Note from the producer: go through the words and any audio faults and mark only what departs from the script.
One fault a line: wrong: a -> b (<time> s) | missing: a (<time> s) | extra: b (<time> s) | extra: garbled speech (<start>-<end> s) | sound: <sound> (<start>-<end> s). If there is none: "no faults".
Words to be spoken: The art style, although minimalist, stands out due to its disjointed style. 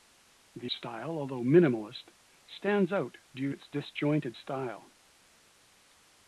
missing: art (0.7 s)
missing: to (3.5 s)